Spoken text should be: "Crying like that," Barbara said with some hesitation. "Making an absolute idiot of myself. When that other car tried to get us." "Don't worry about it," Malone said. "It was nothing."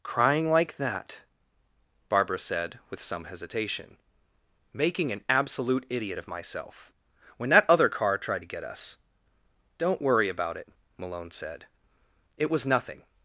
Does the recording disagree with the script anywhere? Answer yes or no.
no